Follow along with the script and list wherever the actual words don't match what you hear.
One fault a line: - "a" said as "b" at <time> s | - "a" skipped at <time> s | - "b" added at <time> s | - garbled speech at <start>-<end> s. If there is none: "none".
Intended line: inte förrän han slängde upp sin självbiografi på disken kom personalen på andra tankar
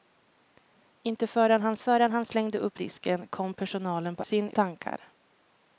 - "förrän han" added at 1.8 s
- "sin självbiografi på" skipped at 2.8 s
- "andra" said as "sin" at 4.2 s